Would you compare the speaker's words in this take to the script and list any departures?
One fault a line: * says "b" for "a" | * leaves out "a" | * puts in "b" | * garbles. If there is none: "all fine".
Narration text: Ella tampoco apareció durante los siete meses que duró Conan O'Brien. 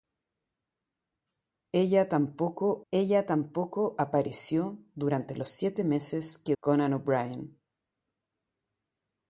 * puts in "ella tampoco"
* leaves out "duró"